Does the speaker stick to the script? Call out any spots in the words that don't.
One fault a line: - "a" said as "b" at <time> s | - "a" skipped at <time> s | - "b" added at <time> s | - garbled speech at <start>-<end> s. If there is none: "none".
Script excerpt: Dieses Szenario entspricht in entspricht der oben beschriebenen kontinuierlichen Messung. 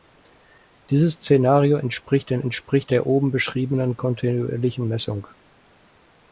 none